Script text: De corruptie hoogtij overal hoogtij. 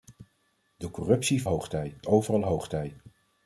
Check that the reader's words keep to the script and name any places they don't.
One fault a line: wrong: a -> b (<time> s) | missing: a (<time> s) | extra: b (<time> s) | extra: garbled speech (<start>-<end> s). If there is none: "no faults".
no faults